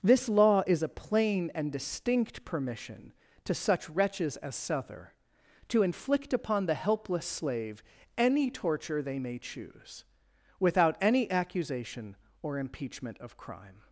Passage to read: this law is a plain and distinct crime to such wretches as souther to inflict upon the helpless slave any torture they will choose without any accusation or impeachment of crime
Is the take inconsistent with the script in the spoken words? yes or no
yes